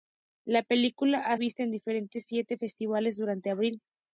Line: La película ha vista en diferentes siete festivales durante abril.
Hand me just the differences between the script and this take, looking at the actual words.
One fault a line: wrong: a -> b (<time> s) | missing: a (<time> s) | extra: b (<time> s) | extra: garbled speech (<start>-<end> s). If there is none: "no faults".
no faults